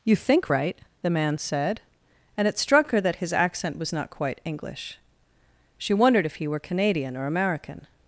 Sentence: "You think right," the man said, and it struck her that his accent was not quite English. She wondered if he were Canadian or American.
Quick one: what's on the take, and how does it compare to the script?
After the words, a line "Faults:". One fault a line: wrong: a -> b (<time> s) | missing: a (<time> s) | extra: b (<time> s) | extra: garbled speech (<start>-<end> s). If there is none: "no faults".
"You think right," the man said, and it struck her that his accent was not quite English. She wondered if he were Canadian or American.
Faults:
no faults